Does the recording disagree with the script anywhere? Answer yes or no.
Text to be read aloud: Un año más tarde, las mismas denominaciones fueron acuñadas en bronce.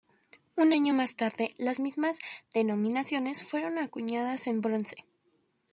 no